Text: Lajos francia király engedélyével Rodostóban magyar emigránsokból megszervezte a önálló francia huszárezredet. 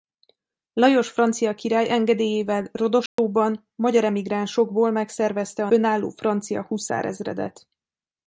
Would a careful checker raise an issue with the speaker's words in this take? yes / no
no